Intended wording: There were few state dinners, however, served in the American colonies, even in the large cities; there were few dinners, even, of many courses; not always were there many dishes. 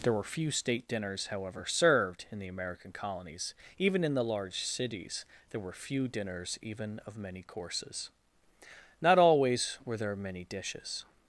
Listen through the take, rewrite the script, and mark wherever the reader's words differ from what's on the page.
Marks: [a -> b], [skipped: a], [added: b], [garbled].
There were few state dinners, however, served in the American colonies, even in the large cities; there were few dinners, even, of many courses; not always were there many dishes.